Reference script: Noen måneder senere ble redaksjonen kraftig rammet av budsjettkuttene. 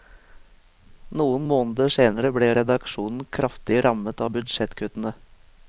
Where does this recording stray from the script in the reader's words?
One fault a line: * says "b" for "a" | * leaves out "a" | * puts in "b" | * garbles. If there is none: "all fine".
all fine